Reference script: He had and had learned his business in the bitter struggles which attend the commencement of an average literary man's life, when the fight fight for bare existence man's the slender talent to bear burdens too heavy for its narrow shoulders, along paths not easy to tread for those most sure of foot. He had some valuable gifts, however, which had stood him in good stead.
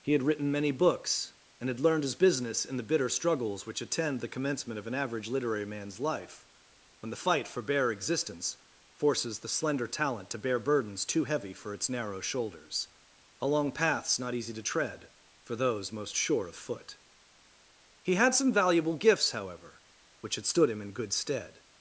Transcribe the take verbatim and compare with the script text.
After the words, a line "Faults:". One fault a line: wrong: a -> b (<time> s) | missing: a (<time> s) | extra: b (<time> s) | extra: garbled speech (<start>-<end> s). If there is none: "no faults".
He had written many books, and had learned his business in the bitter struggles which attend the commencement of an average literary man's life, when the fight for bare existence forces the slender talent to bear burdens too heavy for its narrow shoulders, along paths not easy to tread for those most sure of foot. He had some valuable gifts, however, which had stood him in good stead.
Faults:
extra: written many books (0.2 s)
missing: fight (7.5 s)
wrong: man's -> forces (8.9 s)